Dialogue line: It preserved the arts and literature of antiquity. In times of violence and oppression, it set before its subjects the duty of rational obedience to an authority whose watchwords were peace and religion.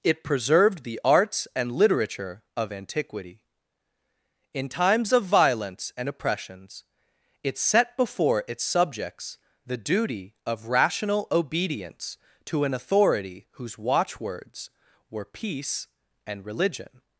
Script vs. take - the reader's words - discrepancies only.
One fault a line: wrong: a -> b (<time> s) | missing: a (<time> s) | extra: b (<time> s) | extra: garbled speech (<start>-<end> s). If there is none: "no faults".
wrong: oppression -> oppressions (6.1 s)